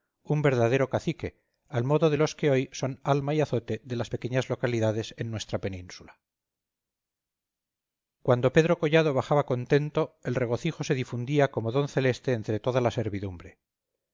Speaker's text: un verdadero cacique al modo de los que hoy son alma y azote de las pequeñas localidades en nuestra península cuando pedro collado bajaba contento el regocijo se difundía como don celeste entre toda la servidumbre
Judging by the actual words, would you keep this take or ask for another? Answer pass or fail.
pass